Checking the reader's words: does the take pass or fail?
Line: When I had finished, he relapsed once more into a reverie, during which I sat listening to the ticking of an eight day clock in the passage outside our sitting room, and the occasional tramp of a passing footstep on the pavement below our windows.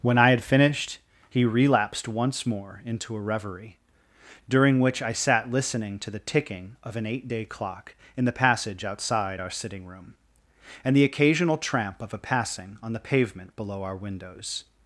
fail